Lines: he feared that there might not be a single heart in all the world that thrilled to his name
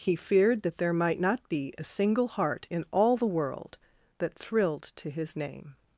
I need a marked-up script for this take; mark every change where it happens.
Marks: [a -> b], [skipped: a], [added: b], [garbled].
he feared that there might not be a single heart in all the world that thrilled to his name